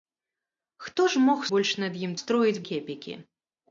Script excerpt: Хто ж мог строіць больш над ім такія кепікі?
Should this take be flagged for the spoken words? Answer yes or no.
yes